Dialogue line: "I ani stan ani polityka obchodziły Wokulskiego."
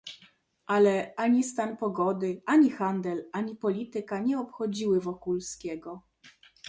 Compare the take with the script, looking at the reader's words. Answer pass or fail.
fail